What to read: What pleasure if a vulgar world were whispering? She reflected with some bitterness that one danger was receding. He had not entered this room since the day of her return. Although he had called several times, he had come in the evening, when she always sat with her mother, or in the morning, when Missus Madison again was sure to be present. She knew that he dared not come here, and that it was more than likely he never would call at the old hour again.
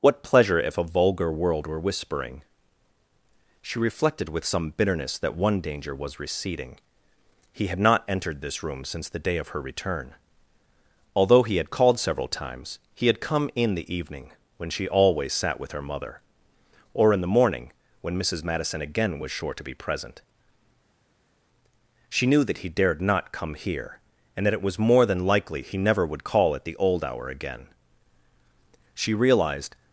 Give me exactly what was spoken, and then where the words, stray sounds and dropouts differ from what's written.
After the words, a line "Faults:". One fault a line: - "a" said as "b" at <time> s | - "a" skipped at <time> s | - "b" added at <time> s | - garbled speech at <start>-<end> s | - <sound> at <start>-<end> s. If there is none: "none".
What pleasure if a vulgar world were whispering? She reflected with some bitterness that one danger was receding. He had not entered this room since the day of her return. Although he had called several times, he had come in the evening, when she always sat with her mother, or in the morning, when Missus Madison again was sure to be present. She knew that he dared not come here, and that it was more than likely he never would call at the old hour again. She realized
Faults:
- "She realized" added at 28.9 s